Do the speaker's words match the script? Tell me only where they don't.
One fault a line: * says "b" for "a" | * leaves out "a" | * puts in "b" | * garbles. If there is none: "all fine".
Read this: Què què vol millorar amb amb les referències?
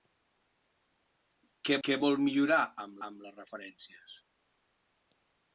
all fine